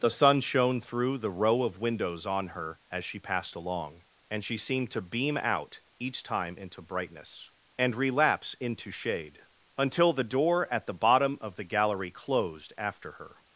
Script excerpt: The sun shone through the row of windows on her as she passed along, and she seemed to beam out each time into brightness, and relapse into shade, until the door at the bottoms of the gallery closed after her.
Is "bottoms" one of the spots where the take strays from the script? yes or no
yes